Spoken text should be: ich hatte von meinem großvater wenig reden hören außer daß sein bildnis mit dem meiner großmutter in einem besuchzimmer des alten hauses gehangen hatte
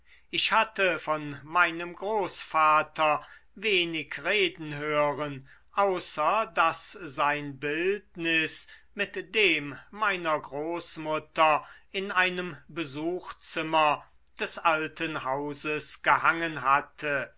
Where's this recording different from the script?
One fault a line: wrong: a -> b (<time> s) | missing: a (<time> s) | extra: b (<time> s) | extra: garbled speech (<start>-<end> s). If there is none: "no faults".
no faults